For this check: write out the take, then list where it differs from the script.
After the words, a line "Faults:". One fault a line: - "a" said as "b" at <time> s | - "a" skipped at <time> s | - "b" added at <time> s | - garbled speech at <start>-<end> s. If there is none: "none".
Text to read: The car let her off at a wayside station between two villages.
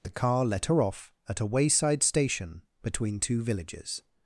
The car let her off at a wayside station between two villages.
Faults:
none